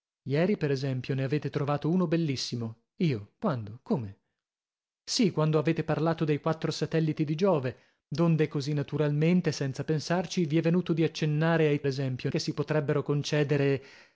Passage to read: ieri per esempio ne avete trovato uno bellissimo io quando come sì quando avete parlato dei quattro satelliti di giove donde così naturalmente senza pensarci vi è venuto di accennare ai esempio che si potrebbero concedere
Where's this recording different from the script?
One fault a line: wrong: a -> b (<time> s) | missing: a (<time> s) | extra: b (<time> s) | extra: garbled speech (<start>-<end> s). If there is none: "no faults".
no faults